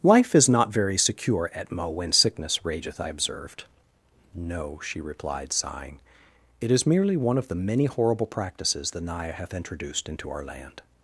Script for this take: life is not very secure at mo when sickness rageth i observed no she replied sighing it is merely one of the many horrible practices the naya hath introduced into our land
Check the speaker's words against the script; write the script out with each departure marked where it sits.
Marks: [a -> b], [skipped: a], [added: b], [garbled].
life is not very secure at mo when sickness rageth i observed no she replied sighing it is merely one of the many horrible practices the naya hath introduced into our land